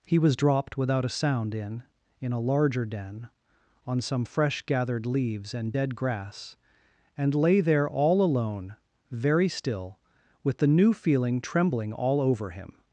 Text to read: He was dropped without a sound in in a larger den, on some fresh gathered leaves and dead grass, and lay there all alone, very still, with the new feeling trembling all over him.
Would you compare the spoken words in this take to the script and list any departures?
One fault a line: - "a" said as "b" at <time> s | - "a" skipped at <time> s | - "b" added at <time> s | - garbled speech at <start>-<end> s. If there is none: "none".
none